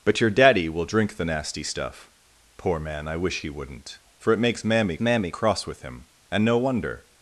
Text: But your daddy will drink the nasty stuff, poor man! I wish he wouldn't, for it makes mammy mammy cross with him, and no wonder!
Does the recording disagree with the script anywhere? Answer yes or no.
no